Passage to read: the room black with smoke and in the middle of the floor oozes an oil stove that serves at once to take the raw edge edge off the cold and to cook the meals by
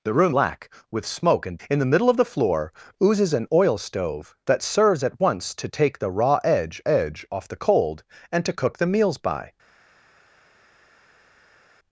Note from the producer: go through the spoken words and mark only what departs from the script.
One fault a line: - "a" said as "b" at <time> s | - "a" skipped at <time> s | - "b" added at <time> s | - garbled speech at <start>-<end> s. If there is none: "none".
none